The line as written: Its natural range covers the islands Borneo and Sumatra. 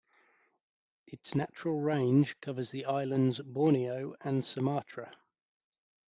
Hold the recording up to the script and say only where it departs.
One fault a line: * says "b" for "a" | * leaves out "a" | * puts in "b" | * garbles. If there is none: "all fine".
all fine